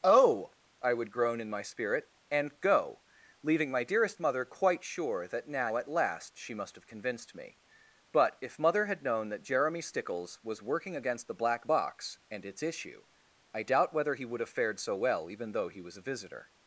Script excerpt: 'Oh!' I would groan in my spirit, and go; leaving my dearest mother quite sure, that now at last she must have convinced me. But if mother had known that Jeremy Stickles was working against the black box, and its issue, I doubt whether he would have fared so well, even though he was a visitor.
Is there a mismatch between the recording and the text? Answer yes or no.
no